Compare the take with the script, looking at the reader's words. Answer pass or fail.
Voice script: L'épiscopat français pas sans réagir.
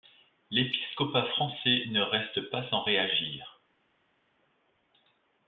fail